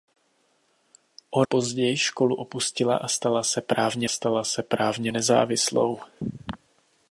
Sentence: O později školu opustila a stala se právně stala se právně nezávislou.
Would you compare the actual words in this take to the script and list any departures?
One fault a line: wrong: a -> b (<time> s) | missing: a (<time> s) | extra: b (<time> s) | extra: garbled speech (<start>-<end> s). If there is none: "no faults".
no faults